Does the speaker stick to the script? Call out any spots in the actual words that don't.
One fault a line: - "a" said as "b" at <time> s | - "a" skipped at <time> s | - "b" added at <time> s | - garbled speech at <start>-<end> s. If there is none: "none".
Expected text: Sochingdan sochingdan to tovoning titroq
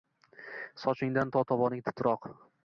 - "sochingdan" skipped at 1.3 s